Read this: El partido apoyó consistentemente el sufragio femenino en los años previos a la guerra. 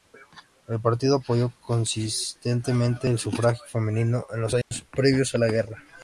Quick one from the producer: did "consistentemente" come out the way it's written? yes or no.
yes